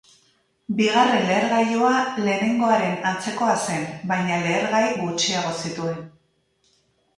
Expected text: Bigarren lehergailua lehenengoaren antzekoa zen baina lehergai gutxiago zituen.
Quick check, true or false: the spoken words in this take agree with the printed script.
true